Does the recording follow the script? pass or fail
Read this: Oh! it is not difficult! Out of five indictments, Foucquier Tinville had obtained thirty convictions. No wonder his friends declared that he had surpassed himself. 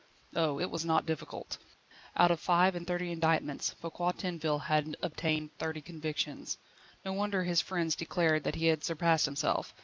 fail